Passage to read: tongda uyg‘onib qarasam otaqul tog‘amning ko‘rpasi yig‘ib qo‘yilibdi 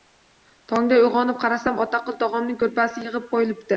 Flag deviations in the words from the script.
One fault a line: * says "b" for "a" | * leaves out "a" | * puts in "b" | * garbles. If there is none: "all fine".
all fine